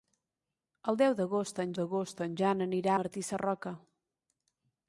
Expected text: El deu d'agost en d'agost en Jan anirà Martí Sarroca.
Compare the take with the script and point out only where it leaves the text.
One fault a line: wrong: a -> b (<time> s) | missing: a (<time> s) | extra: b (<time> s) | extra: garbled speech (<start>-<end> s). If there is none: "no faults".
no faults